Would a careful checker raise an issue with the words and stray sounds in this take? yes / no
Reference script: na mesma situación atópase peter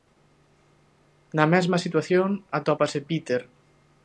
no